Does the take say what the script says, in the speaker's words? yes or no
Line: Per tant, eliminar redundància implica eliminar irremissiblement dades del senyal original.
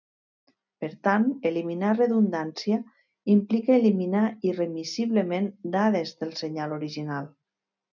yes